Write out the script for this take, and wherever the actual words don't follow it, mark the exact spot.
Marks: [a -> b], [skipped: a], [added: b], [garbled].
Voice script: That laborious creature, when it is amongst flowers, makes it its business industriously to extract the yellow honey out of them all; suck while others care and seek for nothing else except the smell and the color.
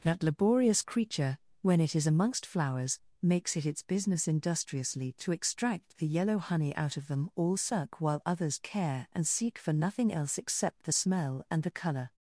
That laborious creature, when it is amongst flowers, makes it its business industriously to extract the yellow honey out of them all; suck while others care and seek for nothing else except the smell and the color.